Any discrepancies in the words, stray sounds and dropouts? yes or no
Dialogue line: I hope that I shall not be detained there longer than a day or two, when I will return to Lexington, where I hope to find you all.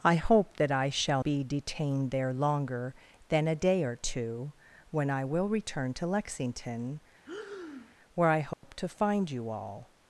yes